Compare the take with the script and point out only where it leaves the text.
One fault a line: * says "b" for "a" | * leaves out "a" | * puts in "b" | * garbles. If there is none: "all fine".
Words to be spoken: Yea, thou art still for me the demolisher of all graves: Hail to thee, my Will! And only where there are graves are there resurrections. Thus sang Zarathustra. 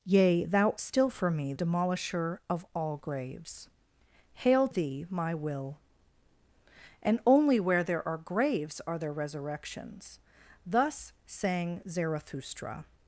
* leaves out "art"
* leaves out "the"
* leaves out "to"